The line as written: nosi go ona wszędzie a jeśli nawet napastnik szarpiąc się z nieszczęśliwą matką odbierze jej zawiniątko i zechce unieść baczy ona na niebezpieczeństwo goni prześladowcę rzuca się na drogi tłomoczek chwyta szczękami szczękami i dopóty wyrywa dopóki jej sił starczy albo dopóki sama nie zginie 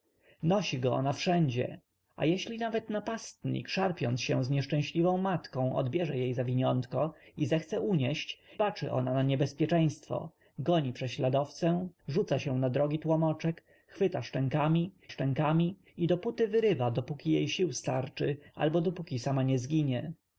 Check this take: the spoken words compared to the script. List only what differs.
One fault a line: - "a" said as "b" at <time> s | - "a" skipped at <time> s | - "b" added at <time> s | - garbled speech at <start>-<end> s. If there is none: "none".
none